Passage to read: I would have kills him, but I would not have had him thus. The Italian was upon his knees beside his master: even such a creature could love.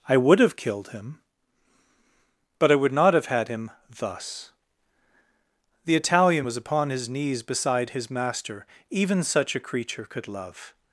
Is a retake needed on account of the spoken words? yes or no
yes